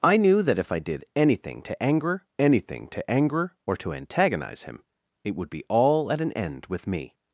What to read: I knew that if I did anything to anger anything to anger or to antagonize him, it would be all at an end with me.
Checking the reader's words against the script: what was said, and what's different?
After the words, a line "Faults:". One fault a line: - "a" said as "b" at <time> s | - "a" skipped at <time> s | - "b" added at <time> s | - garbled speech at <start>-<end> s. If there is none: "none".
I knew that if I did anything to anger anything to anger or to antagonize him, it would be all at an end with me.
Faults:
none